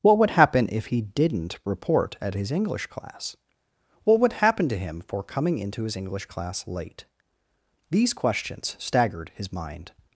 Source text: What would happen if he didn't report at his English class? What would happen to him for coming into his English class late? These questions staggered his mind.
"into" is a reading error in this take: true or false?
false